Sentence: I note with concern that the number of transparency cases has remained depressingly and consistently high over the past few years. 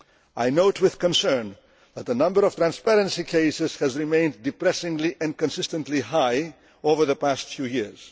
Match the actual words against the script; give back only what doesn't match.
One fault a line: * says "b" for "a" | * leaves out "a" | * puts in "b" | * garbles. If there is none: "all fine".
all fine